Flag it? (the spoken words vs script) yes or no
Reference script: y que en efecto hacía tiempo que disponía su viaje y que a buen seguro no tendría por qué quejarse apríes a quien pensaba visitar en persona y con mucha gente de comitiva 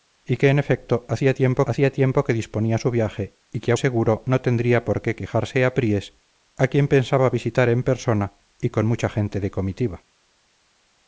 yes